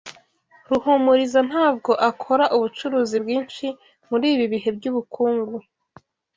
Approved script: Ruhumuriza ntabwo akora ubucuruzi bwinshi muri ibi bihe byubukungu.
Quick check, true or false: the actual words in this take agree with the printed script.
true